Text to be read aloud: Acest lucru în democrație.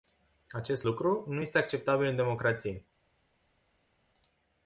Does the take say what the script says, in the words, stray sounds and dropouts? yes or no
no